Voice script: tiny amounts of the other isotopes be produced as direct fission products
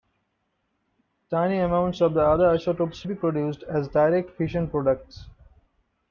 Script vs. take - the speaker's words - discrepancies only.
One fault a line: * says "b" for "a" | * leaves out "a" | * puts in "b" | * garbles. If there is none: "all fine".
all fine